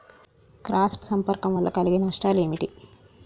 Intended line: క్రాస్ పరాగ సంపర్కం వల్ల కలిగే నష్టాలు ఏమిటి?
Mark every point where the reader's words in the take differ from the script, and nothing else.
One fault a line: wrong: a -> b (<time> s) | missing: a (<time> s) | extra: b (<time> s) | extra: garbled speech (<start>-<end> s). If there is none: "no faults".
missing: పరాగ (1.1 s)